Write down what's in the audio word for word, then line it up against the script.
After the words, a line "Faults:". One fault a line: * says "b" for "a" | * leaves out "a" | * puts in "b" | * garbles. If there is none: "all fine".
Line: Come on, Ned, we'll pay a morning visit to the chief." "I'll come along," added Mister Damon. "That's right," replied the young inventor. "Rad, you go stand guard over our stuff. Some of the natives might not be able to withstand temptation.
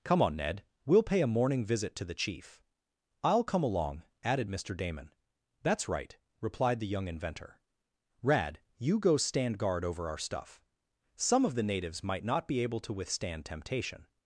Come on, Ned, we'll pay a morning visit to the chief." "I'll come along," added Mister Damon. "That's right," replied the young inventor. "Rad, you go stand guard over our stuff. Some of the natives might not be able to withstand temptation.
Faults:
all fine